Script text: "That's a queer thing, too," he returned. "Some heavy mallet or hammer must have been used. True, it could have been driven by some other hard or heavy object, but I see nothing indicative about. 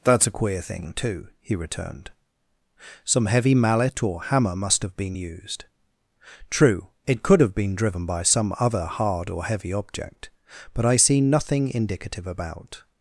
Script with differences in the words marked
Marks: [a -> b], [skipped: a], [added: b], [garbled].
"That's a queer thing, too," he returned. "Some heavy mallet or hammer must have been used. True, it could have been driven by some other hard or heavy object, but I see nothing indicative about.